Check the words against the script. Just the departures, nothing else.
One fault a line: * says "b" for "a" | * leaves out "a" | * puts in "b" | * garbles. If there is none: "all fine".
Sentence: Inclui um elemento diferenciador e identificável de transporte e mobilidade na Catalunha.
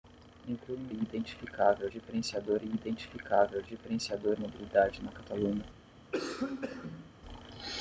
* says "identificável" for "elemento"
* says "diferenciador" for "transporte"